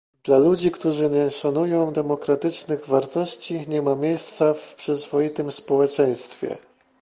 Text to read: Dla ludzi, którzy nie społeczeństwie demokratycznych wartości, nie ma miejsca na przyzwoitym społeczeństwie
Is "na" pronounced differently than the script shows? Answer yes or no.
yes